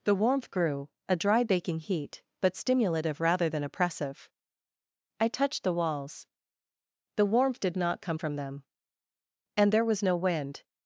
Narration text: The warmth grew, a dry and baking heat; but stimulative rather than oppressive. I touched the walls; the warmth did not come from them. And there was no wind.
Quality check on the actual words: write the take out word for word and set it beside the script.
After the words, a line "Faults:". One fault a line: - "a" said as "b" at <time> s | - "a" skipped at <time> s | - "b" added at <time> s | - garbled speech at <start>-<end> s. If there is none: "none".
The warmth grew, a dry baking heat; but stimulative rather than oppressive. I touched the walls; the warmth did not come from them. And there was no wind.
Faults:
- "and" skipped at 1.4 s